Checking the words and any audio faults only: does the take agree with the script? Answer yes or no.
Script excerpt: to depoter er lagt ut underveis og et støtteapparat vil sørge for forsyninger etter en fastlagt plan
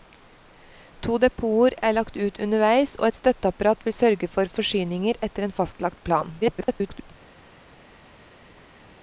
no